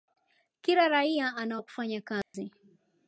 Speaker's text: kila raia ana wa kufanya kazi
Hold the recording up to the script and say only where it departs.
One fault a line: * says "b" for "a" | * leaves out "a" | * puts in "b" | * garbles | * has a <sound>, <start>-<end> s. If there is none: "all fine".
* has a dropout, 2.2-2.3 s